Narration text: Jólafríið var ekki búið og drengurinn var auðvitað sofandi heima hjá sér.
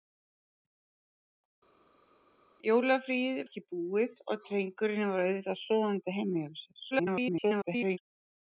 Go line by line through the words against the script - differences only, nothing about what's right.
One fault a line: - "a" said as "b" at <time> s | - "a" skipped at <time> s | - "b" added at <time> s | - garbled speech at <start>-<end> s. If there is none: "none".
- "var" skipped at 3.4 s
- garbled speech at 6.9-8.0 s